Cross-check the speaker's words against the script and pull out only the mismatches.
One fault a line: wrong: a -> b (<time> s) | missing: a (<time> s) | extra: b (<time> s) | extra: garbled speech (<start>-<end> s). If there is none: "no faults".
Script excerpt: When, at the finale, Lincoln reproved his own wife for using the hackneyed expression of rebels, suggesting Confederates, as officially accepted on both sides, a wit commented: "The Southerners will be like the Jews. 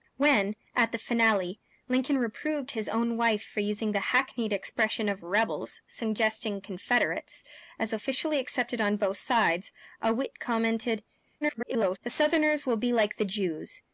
extra: garbled speech (11.4-12.0 s)